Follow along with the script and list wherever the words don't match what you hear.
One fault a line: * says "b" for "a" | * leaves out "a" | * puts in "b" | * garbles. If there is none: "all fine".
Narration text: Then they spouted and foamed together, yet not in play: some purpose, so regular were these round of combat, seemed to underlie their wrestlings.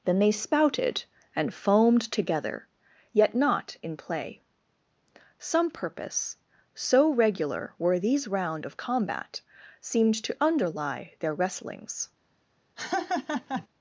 all fine